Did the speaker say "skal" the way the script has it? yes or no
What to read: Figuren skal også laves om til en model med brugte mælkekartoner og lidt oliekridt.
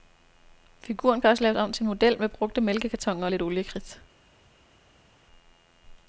no